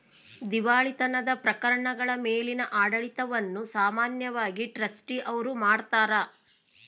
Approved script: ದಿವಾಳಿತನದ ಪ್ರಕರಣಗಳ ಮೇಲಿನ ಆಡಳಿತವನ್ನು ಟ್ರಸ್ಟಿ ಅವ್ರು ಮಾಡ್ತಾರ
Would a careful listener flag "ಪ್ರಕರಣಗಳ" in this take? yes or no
no